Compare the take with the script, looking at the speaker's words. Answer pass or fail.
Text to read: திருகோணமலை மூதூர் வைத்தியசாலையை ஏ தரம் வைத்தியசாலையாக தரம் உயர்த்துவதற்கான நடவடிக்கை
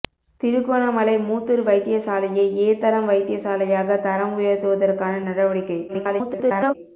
fail